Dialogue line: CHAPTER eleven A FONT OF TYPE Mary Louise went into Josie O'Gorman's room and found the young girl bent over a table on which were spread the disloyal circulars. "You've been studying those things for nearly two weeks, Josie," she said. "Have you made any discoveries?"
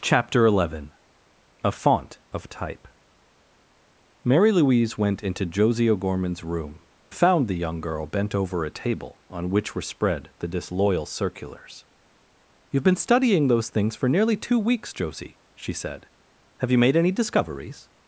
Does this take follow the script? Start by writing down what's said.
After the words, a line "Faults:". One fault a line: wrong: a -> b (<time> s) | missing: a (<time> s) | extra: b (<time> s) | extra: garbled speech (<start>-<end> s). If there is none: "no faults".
CHAPTER eleven A FONT OF TYPE Mary Louise went into Josie O'Gorman's room found the young girl bent over a table on which were spread the disloyal circulars. "You've been studying those things for nearly two weeks, Josie," she said. "Have you made any discoveries?"
Faults:
missing: and (6.8 s)